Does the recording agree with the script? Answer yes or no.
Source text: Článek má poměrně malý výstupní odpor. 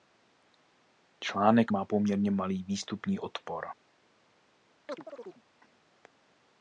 yes